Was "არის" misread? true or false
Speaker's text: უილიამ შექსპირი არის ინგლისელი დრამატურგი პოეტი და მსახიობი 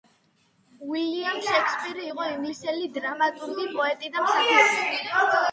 true